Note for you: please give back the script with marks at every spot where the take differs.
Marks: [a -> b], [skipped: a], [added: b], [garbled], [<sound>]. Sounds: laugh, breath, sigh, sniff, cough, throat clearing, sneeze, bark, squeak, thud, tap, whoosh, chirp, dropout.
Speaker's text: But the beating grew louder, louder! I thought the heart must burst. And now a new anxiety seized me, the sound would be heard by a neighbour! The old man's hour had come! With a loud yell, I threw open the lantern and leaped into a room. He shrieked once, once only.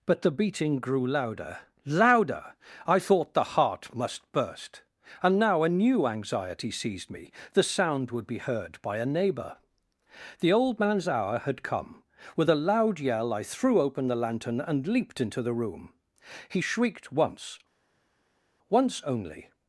But the beating grew louder, louder! I thought the heart must burst. And now a new anxiety seized me, the sound would be heard by a neighbour! The old man's hour had come! With a loud yell, I threw open the lantern and leaped into [a -> the] room. He shrieked once, once only.